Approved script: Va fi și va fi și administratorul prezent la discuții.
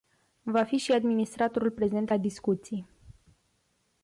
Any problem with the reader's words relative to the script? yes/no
yes